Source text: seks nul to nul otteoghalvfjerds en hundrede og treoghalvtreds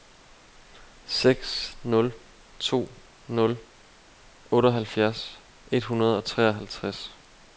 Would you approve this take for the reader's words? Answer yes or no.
no